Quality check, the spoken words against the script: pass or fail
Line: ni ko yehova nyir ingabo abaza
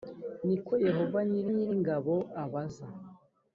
fail